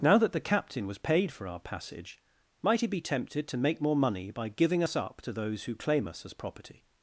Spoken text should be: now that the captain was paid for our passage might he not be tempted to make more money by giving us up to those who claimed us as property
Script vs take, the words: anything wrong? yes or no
yes